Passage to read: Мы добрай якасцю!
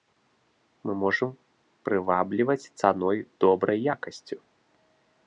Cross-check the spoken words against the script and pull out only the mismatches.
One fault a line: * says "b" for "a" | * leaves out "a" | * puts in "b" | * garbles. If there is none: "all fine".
* puts in "можам прывабліваць цаной"